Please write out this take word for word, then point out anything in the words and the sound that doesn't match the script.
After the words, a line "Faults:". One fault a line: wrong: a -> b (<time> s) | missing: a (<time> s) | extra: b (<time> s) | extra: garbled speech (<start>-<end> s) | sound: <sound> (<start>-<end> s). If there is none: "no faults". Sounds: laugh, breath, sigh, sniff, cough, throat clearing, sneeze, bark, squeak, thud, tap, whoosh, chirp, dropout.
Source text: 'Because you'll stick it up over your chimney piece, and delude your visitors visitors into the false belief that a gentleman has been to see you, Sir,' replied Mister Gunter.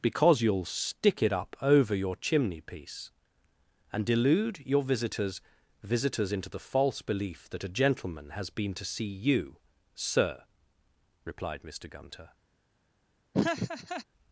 'Because you'll stick it up over your chimney piece, and delude your visitors visitors into the false belief that a gentleman has been to see you, Sir,' replied Mister Gunter.
Faults:
sound: laugh (13.3-14.0 s)